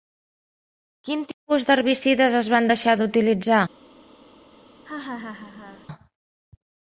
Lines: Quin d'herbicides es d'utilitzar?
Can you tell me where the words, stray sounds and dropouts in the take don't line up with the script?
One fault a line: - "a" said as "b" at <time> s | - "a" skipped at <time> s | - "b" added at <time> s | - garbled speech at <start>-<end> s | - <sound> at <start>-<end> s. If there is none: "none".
- "tipus" added at 1.3 s
- "van deixar" added at 2.5 s
- laugh at 4.8-5.9 s